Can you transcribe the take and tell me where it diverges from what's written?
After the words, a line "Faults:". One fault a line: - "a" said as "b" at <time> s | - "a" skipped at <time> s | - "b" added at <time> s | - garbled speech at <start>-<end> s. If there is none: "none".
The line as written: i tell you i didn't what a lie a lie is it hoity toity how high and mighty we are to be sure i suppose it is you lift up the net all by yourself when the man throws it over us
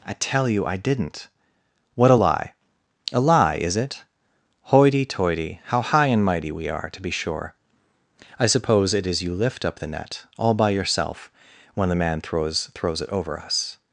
i tell you i didn't what a lie a lie is it hoity toity how high and mighty we are to be sure i suppose it is you lift up the net all by yourself when the man throws throws it over us
Faults:
- "throws" added at 12.7 s